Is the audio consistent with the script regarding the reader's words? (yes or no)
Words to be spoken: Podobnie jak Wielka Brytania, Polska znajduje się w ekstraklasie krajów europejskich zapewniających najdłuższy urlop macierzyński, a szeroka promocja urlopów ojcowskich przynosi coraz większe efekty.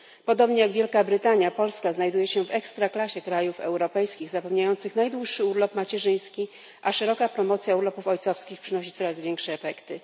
yes